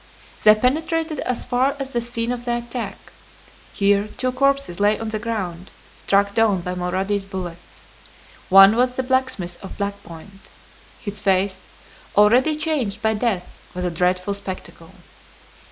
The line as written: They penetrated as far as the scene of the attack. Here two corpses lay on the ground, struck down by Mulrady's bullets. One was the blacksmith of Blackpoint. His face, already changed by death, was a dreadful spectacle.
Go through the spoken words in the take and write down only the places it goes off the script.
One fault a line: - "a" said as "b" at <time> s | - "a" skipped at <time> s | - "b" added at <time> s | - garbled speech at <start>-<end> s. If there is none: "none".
none